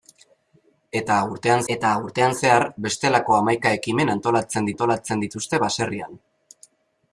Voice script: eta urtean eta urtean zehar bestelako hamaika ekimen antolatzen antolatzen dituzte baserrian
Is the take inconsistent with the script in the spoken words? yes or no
no